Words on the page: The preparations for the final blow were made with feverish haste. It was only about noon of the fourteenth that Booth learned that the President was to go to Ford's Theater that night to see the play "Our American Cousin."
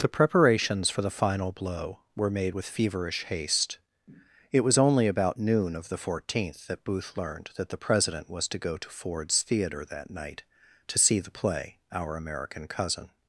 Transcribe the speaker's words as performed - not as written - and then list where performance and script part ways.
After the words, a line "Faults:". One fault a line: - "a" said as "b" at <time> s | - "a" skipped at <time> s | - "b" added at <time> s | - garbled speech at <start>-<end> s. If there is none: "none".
The preparations for the final blow were made with feverish haste. It was only about noon of the fourteenth that Booth learned that the President was to go to Ford's Theater that night to see the play "Our American Cousin."
Faults:
none